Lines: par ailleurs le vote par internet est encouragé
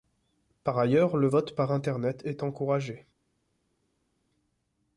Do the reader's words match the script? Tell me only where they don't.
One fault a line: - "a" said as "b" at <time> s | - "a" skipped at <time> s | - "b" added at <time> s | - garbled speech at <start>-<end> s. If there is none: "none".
none